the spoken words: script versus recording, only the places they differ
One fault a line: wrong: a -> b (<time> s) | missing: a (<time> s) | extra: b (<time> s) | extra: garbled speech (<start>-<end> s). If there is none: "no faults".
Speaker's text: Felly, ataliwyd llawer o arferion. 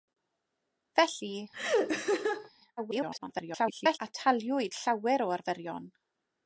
extra: garbled speech (2.8-4.0 s)